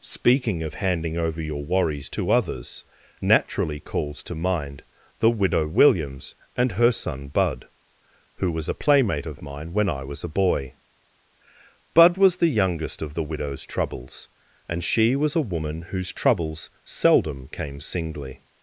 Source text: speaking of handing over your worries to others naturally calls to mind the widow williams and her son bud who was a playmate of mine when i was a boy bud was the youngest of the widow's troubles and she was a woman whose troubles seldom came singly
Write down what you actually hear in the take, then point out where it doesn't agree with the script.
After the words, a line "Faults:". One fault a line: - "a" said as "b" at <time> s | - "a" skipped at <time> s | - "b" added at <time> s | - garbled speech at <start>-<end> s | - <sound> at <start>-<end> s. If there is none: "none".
speaking of handing over your worries to others naturally calls to mind the widow williams and her son bud who was a playmate of mine when i was a boy bud was the youngest of the widow's troubles and she was a woman whose troubles seldom came singly
Faults:
none